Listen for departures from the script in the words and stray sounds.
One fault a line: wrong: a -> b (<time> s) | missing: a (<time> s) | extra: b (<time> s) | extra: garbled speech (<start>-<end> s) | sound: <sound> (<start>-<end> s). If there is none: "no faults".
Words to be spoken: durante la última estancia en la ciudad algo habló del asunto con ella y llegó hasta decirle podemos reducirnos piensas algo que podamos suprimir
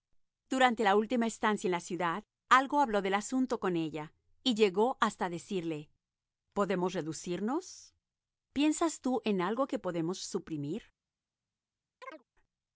extra: tú en (9.0 s)
sound: chirp (12.0-12.2 s)